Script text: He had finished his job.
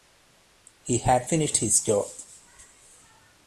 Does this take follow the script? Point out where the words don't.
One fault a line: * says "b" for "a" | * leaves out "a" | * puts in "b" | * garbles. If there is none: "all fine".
all fine